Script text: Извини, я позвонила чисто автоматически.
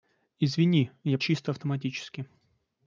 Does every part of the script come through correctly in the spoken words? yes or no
no